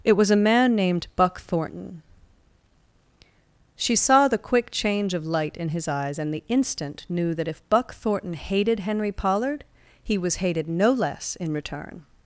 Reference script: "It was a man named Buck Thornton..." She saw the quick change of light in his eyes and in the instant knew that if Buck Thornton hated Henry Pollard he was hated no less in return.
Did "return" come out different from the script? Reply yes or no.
no